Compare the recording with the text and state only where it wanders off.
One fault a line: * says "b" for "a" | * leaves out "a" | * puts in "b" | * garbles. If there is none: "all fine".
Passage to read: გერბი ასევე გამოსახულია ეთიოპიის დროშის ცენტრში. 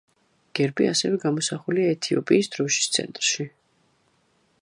all fine